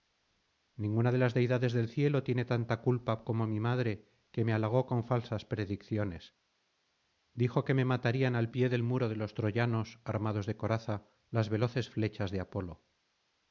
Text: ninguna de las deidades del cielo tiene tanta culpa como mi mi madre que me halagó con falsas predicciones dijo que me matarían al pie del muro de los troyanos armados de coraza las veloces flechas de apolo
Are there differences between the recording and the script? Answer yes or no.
yes